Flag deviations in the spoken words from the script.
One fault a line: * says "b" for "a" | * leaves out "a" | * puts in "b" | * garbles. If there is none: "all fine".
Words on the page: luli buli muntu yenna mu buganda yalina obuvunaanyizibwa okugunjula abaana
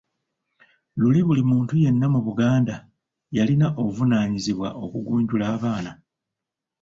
all fine